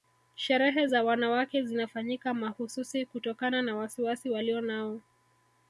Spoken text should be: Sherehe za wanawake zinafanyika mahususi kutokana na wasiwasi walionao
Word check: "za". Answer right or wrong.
right